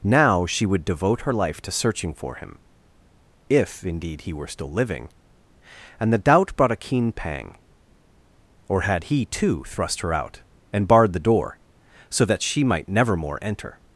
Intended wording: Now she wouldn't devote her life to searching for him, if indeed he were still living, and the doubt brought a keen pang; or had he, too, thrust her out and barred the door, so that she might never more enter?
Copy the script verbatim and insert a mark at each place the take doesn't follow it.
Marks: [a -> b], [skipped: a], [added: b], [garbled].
Now she [wouldn't -> would] devote her life to searching for him, if indeed he were still living, and the doubt brought a keen pang; or had he, too, thrust her out and barred the door, so that she might never more enter?